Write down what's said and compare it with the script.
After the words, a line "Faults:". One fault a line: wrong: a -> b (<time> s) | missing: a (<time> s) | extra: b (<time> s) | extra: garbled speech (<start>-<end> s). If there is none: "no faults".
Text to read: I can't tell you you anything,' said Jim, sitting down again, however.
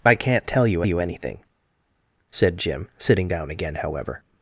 I can't tell you you anything,' said Jim, sitting down again, however.
Faults:
no faults